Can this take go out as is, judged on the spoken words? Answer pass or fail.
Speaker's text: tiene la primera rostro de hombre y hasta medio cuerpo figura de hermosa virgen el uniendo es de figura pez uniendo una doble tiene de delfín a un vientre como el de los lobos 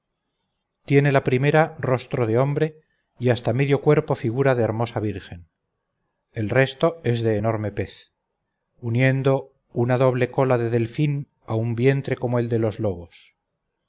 fail